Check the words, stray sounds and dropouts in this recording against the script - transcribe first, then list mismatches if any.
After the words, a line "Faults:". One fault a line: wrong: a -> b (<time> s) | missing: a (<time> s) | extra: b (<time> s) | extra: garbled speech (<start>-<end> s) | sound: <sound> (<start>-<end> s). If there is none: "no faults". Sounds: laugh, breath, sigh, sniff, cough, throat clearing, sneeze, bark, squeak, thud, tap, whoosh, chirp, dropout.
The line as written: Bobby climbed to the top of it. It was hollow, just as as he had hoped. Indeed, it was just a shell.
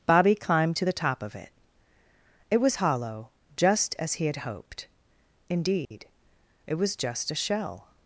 Bobby climbed to the top of it. It was hollow, just as he had hoped. Indeed, it was just a shell.
Faults:
missing: as (4.1 s)
sound: dropout (5.8-5.9 s)